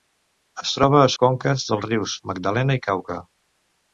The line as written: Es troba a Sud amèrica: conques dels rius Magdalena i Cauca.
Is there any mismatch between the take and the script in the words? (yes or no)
yes